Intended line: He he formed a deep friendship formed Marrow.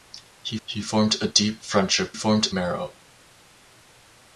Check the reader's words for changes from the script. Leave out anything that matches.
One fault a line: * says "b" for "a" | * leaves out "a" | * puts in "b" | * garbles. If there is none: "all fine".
all fine